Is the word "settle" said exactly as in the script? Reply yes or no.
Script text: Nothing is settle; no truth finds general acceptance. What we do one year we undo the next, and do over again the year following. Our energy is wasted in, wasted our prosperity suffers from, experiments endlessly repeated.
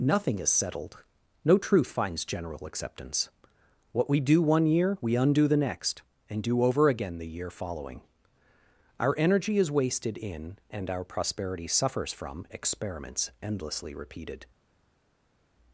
no